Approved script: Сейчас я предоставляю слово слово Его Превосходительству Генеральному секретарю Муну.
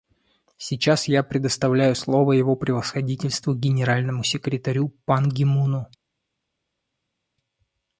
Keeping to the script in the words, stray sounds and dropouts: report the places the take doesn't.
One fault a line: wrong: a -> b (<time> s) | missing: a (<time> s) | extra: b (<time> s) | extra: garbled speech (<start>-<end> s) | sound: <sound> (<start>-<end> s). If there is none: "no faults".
missing: слово (2.3 s)
extra: Пан Ги (5.0 s)